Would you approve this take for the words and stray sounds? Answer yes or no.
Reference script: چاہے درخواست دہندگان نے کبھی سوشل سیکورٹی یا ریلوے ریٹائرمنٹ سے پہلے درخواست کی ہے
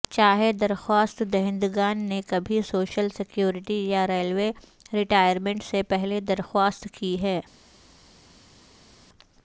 yes